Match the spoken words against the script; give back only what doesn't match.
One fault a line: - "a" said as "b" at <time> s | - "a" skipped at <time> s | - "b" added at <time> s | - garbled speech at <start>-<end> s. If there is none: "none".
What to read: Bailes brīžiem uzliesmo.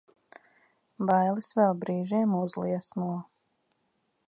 - "vēl" added at 1.6 s